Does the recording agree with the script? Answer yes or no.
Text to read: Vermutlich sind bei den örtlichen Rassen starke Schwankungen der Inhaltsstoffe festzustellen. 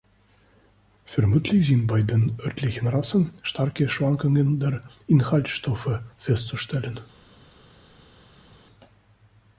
yes